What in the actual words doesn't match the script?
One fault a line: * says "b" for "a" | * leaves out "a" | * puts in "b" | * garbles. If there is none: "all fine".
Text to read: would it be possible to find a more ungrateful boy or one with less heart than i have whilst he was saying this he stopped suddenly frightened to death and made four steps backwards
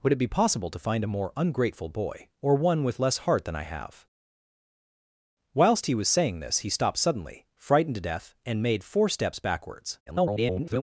* garbles